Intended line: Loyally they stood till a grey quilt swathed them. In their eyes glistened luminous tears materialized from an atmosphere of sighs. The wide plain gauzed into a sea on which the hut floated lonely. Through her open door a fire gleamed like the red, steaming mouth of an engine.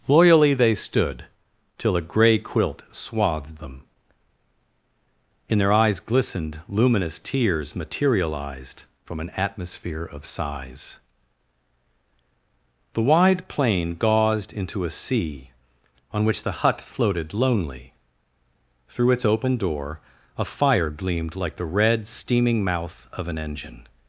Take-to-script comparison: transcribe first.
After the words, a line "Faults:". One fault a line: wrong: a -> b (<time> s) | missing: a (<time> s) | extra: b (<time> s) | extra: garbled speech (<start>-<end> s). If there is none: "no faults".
Loyally they stood till a grey quilt swathed them. In their eyes glistened luminous tears materialized from an atmosphere of sighs. The wide plain gauzed into a sea on which the hut floated lonely. Through its open door a fire gleamed like the red, steaming mouth of an engine.
Faults:
wrong: her -> its (19.1 s)